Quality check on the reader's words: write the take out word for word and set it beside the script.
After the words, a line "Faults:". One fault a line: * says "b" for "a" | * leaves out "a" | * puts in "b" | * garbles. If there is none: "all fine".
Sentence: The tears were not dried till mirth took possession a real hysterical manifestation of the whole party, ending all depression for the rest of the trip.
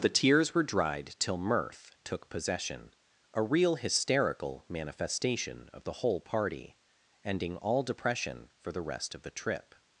The tears were dried till mirth took possession a real hysterical manifestation of the whole party, ending all depression for the rest of the trip.
Faults:
* leaves out "not"